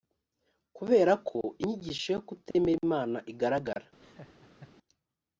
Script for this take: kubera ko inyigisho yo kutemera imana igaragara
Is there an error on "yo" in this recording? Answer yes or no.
no